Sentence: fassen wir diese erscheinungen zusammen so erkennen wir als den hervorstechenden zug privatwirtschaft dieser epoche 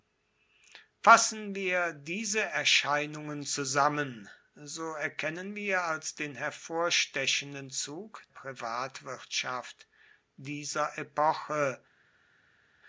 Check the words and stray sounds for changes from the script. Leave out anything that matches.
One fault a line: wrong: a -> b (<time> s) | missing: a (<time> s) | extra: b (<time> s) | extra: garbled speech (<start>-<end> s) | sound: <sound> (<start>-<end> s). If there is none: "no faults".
no faults